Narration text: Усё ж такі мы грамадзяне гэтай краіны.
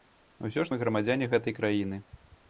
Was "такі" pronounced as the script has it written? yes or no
no